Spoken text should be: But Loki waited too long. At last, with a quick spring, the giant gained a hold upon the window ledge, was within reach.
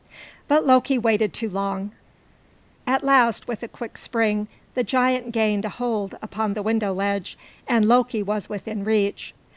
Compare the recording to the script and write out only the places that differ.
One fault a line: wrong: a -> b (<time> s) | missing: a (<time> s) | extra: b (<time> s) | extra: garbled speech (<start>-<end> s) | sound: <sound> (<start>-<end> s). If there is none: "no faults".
extra: and Loki (7.7 s)